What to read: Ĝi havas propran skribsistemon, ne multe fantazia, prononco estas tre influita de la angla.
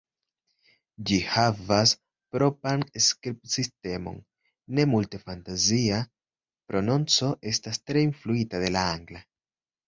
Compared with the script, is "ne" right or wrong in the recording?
right